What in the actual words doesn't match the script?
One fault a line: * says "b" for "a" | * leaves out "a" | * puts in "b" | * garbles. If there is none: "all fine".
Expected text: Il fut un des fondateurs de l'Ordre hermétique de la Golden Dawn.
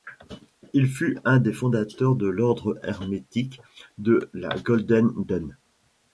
all fine